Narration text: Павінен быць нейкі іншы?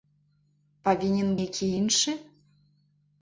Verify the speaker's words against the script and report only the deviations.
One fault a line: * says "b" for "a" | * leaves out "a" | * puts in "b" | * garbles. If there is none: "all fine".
* leaves out "быць"